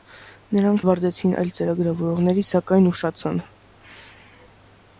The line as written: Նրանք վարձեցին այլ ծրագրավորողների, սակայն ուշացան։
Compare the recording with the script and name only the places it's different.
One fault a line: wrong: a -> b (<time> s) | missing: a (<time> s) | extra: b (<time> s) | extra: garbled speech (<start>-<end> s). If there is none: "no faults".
no faults